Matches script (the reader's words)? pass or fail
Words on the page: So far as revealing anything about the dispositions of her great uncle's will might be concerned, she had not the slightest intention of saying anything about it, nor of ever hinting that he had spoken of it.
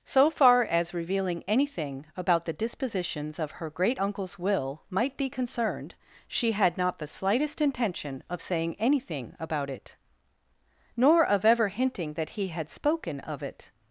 pass